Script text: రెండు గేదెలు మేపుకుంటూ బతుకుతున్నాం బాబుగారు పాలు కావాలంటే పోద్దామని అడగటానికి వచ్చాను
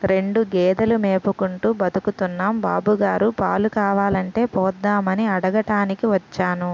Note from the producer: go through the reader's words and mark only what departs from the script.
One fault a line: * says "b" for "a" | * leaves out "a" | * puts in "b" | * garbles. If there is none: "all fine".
all fine